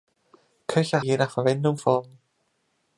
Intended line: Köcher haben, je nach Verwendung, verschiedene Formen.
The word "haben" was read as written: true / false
false